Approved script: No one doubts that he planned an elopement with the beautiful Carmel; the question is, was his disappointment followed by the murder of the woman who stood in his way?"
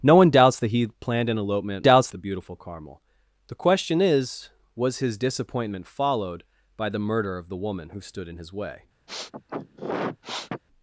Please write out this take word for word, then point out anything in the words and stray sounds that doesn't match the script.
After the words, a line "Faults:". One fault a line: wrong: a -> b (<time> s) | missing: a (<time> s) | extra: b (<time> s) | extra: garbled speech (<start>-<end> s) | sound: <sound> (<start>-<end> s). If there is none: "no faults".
No one doubts that he planned an elopement doubts the beautiful Carmel; the question is, was his disappointment followed by the murder of the woman who stood in his way?"
Faults:
wrong: with -> doubts (1.8 s)
sound: sniff (9.1-10.6 s)